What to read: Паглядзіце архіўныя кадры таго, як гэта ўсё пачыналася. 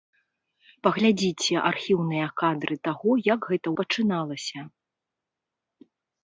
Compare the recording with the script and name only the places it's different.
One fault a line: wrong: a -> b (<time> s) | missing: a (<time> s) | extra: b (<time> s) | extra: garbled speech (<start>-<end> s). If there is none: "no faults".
missing: ўсё (3.7 s)